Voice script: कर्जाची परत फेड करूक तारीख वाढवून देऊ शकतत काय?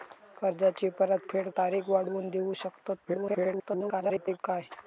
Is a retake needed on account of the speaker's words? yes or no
yes